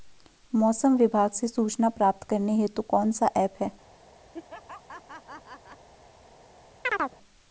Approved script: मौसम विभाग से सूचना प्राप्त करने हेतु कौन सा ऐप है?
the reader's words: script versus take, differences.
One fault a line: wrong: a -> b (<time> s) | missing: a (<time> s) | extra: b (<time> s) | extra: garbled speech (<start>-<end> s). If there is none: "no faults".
no faults